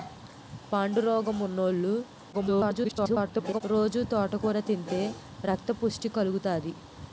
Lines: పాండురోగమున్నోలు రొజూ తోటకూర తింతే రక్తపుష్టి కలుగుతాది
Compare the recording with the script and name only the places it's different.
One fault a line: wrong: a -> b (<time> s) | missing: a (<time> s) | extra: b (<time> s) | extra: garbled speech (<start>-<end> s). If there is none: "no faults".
extra: garbled speech (2.3-3.6 s)